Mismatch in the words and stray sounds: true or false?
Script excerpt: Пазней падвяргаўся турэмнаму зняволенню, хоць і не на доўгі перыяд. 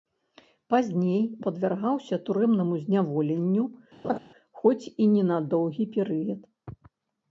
true